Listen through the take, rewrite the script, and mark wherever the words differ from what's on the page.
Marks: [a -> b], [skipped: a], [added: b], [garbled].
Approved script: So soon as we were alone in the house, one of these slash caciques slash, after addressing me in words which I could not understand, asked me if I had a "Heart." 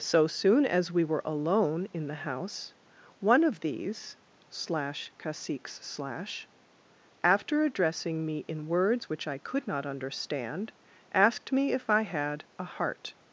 So soon as we were alone in the house, one of these slash caciques slash, after addressing me in words which I could not understand, asked me if I had a "Heart."